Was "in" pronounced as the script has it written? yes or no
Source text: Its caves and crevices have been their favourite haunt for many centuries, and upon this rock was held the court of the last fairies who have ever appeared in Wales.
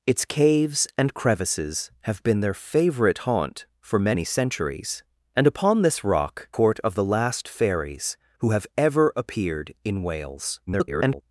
yes